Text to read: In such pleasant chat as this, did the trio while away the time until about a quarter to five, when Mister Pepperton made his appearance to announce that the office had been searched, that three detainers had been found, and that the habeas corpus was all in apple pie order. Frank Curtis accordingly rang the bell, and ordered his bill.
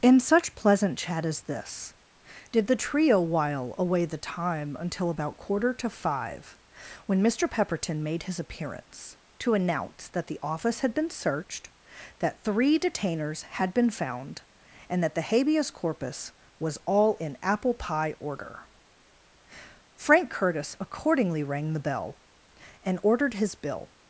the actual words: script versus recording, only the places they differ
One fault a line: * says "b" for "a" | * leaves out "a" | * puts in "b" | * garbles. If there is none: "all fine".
* leaves out "a"